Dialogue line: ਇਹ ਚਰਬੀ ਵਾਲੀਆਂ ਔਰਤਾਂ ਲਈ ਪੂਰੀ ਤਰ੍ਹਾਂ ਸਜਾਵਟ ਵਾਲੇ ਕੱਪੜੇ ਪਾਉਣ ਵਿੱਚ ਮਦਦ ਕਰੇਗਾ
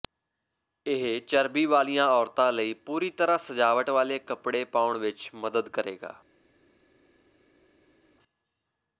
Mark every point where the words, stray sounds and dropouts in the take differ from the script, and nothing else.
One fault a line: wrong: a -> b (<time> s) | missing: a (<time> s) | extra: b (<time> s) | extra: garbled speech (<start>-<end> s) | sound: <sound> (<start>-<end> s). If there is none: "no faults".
no faults